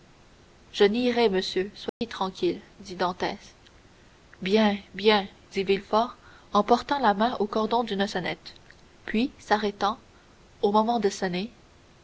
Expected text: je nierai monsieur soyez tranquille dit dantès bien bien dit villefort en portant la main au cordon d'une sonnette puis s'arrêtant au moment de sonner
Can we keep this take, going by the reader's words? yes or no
yes